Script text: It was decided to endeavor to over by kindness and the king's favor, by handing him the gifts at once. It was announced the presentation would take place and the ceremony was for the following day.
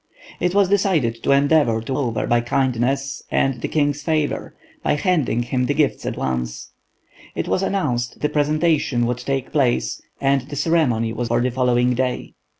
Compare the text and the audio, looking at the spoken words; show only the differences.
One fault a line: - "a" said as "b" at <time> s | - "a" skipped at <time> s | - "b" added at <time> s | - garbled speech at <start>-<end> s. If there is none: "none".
none